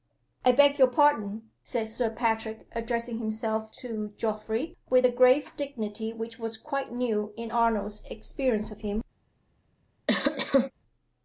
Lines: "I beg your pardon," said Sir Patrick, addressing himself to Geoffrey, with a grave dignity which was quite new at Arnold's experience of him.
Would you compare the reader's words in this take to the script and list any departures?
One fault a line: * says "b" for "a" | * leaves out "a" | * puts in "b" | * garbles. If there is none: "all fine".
* says "in" for "at"